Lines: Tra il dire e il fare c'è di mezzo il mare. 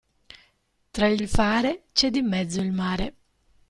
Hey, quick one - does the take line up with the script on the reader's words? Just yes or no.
no